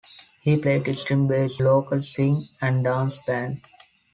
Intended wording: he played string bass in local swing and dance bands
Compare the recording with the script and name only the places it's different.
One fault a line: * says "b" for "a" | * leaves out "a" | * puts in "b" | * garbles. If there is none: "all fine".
* leaves out "in"